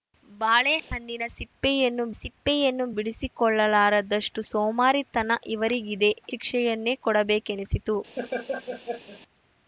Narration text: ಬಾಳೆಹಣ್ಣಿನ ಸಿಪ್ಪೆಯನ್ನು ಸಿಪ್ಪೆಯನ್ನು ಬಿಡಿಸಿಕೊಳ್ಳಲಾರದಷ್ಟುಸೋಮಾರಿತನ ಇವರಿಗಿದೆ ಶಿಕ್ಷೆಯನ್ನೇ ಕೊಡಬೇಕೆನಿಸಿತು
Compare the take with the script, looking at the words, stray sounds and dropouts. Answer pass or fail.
fail